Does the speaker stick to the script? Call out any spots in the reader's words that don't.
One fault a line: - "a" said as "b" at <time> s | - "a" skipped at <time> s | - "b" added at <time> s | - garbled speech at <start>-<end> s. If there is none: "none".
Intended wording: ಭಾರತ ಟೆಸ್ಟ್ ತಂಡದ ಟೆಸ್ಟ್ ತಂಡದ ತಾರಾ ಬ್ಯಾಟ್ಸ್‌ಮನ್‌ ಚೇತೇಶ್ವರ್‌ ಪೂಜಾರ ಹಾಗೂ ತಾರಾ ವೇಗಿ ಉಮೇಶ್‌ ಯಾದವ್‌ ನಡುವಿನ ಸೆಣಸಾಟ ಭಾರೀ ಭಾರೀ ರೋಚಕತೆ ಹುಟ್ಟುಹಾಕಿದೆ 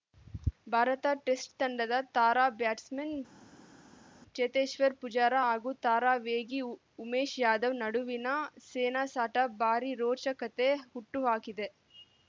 - "ಟೆಸ್ಟ್ ತಂಡದ" skipped at 1.9 s
- "ಭಾರೀ" skipped at 9.9 s